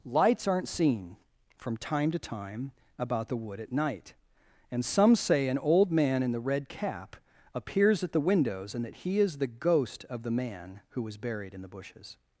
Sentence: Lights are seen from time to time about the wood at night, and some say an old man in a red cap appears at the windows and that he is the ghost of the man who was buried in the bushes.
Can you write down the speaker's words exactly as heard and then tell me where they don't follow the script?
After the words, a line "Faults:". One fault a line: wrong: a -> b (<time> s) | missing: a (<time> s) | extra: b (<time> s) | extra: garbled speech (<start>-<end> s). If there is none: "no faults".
Lights aren't seen from time to time about the wood at night, and some say an old man in the red cap appears at the windows and that he is the ghost of the man who was buried in the bushes.
Faults:
wrong: are -> aren't (0.5 s)
wrong: a -> the (6.3 s)